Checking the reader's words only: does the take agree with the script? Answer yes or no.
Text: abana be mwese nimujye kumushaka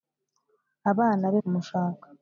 no